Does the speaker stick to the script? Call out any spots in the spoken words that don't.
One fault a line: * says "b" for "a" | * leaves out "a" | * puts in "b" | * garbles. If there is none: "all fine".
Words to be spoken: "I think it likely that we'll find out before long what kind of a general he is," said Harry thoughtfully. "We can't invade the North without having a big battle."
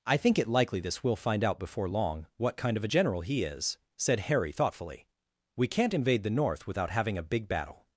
* says "this" for "that"